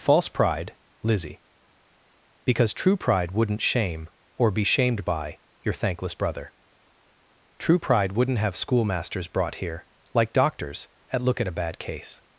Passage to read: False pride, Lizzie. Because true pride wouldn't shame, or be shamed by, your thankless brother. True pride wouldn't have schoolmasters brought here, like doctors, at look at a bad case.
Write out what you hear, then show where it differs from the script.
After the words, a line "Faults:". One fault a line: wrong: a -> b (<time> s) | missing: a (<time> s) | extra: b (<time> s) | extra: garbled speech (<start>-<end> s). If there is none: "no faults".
False pride, Lizzie. Because true pride wouldn't shame, or be shamed by, your thankless brother. True pride wouldn't have schoolmasters brought here, like doctors, at look at a bad case.
Faults:
no faults